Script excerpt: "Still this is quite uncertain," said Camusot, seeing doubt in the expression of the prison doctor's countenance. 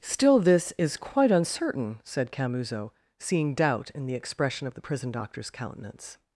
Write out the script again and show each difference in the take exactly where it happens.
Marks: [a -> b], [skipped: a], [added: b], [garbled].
"Still this is quite uncertain," said Camusot, seeing doubt in the expression of the prison doctor's countenance.